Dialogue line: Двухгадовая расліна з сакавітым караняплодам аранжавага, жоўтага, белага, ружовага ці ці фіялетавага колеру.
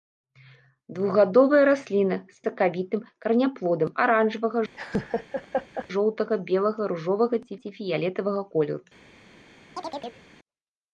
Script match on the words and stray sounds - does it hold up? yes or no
no